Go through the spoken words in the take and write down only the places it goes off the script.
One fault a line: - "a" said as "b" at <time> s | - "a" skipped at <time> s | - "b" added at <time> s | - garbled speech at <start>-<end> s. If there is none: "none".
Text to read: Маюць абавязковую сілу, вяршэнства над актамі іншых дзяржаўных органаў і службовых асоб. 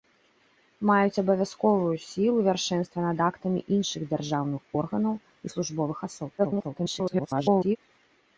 - garbled speech at 6.4-7.8 s